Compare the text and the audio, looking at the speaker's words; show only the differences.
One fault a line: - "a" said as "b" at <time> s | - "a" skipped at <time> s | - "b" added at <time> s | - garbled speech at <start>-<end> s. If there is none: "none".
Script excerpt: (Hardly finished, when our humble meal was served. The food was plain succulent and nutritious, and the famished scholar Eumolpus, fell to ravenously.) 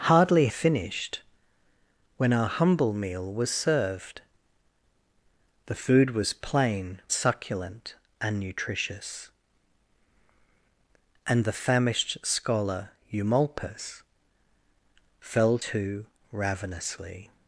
none